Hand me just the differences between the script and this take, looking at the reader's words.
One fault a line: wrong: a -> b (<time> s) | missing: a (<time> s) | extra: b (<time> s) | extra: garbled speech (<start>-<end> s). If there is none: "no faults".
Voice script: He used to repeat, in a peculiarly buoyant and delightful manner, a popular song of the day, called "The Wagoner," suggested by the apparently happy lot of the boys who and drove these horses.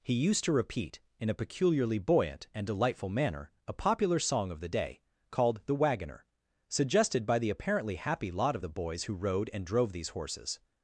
extra: rode (9.1 s)